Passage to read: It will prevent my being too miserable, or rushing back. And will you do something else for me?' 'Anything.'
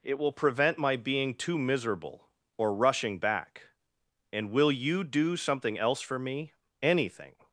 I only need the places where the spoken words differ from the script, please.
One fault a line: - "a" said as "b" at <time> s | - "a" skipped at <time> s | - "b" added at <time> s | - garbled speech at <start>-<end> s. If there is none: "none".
none